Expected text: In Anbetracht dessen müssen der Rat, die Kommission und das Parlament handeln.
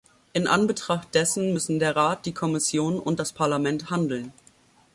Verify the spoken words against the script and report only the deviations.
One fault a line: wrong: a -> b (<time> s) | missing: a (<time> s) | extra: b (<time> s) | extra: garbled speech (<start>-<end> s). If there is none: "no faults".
no faults